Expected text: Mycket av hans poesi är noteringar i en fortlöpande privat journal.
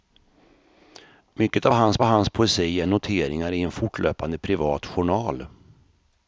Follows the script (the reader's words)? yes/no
no